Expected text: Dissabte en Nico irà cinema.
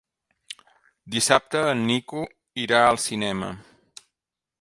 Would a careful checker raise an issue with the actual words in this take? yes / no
yes